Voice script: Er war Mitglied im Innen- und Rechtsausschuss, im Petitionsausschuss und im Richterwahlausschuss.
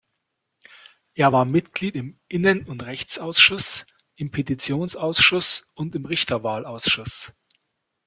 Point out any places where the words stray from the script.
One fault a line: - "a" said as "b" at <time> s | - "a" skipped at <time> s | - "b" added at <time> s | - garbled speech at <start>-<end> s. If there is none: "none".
none